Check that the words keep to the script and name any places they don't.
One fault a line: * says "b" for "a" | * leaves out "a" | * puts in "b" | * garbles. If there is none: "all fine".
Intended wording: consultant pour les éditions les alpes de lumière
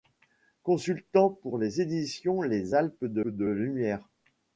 * puts in "de"